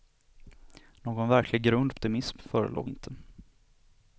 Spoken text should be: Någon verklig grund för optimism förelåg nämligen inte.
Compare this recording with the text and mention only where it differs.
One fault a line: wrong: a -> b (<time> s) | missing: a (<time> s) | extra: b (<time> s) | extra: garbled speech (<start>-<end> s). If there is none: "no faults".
missing: för (1.9 s)
missing: nämligen (2.9 s)